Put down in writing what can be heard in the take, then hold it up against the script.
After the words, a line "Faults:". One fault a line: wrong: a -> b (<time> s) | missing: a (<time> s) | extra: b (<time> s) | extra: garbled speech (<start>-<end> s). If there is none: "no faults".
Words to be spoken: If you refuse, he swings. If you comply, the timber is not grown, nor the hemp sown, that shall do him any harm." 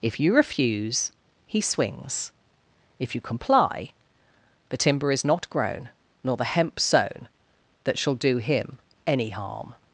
If you refuse, he swings. If you comply, the timber is not grown, nor the hemp sown, that shall do him any harm."
Faults:
no faults